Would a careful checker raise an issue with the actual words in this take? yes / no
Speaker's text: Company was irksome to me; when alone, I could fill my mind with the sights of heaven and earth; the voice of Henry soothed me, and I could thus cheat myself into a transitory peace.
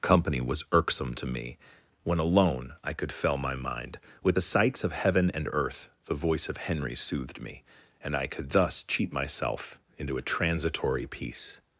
yes